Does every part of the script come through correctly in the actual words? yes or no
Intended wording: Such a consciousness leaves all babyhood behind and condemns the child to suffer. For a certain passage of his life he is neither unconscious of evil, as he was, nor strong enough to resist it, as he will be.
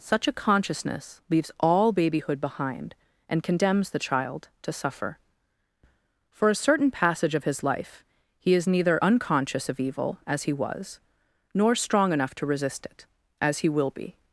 yes